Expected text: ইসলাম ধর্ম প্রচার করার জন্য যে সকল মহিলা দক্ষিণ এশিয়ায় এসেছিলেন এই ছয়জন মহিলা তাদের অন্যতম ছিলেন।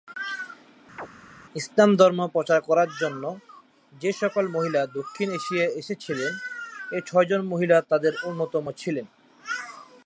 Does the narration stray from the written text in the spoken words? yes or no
no